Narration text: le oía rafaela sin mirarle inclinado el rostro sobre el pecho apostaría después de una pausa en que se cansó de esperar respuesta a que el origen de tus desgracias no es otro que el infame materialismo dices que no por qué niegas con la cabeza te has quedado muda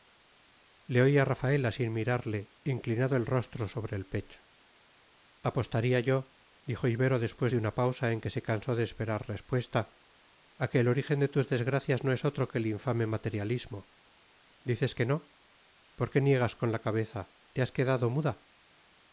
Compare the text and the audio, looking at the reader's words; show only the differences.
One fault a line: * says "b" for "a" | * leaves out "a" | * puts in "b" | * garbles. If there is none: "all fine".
* puts in "yo dijo ibero"